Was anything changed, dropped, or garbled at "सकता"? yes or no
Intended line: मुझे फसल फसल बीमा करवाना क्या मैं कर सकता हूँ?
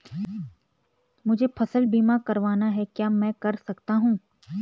no